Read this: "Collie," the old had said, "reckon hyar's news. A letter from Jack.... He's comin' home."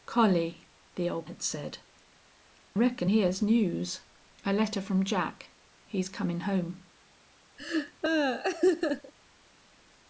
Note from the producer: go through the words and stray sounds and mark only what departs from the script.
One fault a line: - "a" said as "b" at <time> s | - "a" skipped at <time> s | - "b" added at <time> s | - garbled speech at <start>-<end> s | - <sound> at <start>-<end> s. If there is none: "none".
- laugh at 7.6-9.1 s